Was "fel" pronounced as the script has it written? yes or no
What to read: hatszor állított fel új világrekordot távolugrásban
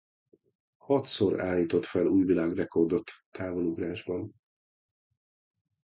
yes